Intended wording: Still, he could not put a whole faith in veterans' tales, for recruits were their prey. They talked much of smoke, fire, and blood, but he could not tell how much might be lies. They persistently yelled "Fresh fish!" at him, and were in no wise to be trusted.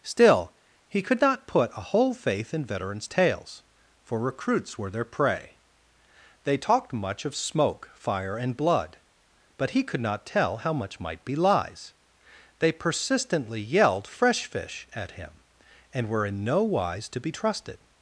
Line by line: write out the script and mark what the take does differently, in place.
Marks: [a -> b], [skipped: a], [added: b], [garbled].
Still, he could not put a whole faith in veterans' tales, for recruits were their prey. They talked much of smoke, fire, and blood, but he could not tell how much might be lies. They persistently yelled "Fresh fish!" at him, and were in no wise to be trusted.